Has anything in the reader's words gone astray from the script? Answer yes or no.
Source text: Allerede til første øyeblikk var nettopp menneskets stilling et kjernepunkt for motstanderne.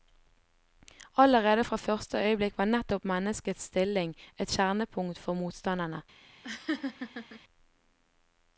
yes